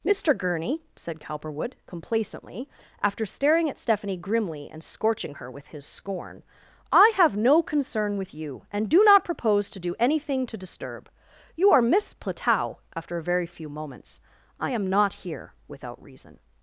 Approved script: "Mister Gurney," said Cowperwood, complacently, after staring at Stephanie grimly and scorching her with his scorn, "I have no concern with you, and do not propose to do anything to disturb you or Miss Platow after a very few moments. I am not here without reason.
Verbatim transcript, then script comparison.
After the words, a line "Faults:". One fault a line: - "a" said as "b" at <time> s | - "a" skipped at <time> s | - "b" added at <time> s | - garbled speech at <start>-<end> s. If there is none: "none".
"Mister Gurney," said Cowperwood, complacently, after staring at Stephanie grimly and scorching her with his scorn, "I have no concern with you, and do not propose to do anything to disturb you are Miss Platow after a very few moments. I am not here without reason.
Faults:
- "or" said as "are" at 11.7 s